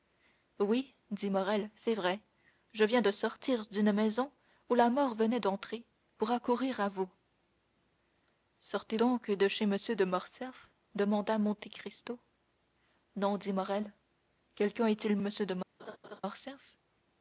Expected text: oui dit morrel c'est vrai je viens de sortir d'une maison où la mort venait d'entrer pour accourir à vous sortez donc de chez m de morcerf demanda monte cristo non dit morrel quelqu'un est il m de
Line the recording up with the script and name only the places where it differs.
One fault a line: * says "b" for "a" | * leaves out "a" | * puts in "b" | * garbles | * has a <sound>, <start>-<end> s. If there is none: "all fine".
* has a laugh, 15.8-16.2 s